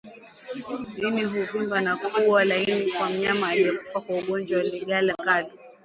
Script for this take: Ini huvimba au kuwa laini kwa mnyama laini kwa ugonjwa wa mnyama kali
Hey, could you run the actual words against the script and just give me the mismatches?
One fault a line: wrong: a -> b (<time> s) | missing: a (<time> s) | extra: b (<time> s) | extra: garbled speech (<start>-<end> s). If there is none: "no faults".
wrong: au -> na (1.8 s)
wrong: laini -> aliyekufa (3.5 s)
wrong: mnyama -> ndigana (4.6 s)